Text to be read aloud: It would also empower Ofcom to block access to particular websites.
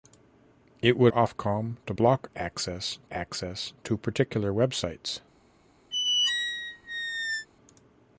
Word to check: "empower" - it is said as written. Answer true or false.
false